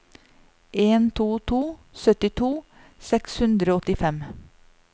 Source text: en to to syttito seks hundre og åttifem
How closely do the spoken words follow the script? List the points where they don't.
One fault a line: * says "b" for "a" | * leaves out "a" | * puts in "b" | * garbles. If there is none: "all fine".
all fine